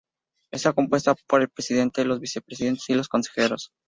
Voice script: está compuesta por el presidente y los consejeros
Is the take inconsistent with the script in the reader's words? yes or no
yes